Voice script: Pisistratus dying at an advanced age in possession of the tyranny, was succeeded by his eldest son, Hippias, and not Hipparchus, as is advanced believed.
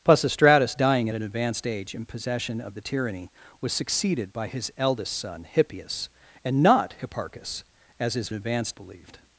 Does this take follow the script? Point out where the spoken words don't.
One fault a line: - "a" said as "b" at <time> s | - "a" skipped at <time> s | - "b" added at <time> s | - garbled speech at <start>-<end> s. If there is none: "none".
none